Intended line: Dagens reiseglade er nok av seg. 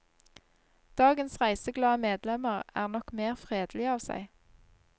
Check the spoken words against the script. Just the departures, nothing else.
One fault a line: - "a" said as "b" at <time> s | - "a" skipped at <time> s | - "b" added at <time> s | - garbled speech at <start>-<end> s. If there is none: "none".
- "medlemmer" added at 2.0 s
- "mer fredelige" added at 3.2 s